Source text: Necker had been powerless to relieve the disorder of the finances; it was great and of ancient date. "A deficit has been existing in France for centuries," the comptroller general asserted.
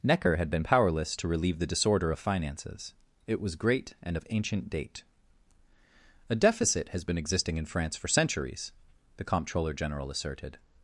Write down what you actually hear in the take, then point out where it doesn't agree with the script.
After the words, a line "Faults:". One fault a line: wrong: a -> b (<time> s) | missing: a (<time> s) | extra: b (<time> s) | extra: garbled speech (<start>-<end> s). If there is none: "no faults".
Necker had been powerless to relieve the disorder of finances; it was great and of ancient date. "A deficit has been existing in France for centuries," the comptroller general asserted.
Faults:
missing: the (2.2 s)